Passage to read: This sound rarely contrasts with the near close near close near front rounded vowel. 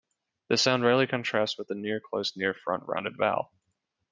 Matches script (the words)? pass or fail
fail